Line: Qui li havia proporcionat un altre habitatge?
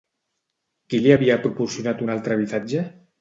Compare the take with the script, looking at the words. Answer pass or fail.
pass